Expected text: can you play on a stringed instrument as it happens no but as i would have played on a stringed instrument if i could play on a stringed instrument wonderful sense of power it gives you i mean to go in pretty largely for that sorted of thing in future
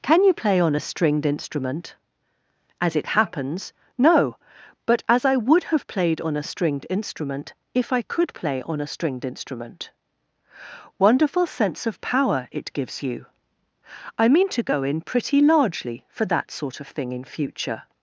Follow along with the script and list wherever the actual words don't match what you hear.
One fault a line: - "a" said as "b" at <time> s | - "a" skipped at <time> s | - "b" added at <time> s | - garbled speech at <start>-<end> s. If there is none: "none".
- "sorted" said as "sort" at 16.5 s